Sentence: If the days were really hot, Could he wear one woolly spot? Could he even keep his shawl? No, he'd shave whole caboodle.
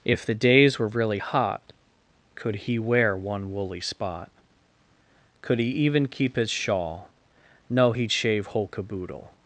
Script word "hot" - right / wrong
right